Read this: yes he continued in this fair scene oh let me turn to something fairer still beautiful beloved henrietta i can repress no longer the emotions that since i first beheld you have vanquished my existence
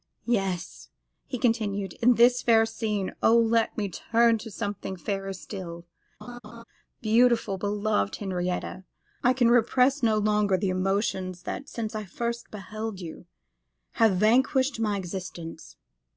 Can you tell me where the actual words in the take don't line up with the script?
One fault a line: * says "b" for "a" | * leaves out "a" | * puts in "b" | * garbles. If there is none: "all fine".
all fine